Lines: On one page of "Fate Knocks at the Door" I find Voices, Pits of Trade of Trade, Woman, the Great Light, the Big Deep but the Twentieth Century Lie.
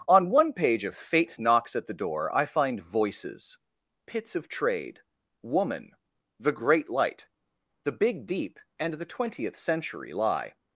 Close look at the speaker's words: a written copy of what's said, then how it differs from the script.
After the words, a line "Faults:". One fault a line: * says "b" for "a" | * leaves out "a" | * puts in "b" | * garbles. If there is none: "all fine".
On one page of "Fate Knocks at the Door" I find Voices, Pits of Trade, Woman, the Great Light, the Big Deep and the Twentieth Century Lie.
Faults:
* leaves out "of Trade"
* says "and" for "but"